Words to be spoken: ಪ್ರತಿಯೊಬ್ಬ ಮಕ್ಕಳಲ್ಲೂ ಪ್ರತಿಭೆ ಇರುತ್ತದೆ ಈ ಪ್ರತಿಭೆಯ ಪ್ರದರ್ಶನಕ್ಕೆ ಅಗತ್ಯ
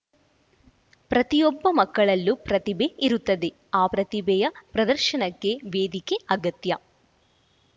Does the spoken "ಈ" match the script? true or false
false